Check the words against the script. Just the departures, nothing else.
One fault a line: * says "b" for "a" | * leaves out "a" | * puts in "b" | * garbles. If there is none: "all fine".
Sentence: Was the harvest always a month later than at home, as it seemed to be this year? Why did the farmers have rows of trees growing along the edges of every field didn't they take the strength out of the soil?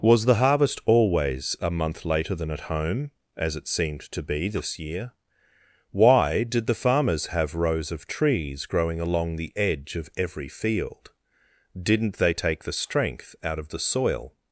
* says "edge" for "edges"